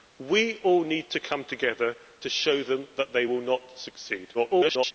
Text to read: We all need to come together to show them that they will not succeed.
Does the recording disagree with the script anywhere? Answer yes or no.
yes